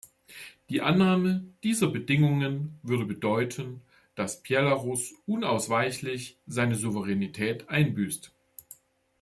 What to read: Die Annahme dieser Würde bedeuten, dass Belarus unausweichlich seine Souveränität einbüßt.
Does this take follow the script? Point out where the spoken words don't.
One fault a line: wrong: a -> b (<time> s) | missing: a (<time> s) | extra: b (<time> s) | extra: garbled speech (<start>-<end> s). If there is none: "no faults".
extra: Bedingungen (1.9 s)